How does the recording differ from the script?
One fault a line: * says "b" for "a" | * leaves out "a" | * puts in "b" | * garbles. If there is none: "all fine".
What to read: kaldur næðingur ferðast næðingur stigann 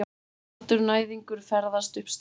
* says "upp" for "næðingur"